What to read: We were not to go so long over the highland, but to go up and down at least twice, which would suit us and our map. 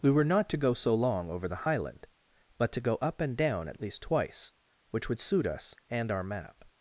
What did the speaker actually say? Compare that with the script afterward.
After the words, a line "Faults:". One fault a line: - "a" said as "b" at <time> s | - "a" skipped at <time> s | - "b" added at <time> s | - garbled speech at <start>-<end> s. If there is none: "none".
We were not to go so long over the highland, but to go up and down at least twice, which would suit us and our map.
Faults:
none